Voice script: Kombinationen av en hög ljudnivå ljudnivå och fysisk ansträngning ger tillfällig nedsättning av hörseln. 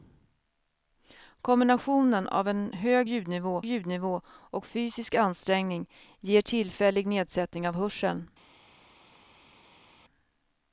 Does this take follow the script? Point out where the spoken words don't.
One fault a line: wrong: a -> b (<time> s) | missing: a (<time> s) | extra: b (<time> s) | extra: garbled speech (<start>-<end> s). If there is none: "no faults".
no faults